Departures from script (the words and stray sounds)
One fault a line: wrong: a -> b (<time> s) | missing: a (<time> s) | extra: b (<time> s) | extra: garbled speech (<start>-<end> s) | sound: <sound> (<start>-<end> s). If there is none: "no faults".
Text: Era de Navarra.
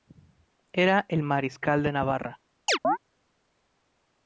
extra: el mariscal (1.1 s)
sound: chirp (2.7-3.0 s)